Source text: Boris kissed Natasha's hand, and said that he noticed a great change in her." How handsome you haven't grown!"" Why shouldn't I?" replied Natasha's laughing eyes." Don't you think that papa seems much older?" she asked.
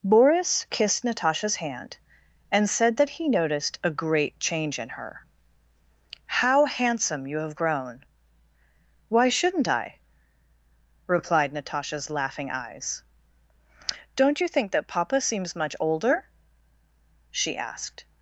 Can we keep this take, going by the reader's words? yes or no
no